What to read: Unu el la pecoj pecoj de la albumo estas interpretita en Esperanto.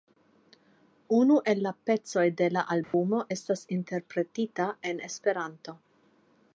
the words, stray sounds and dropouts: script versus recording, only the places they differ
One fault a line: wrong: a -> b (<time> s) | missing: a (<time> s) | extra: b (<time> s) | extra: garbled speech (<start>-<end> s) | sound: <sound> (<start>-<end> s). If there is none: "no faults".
missing: pecoj (2.2 s)
sound: dropout (2.8-2.9 s)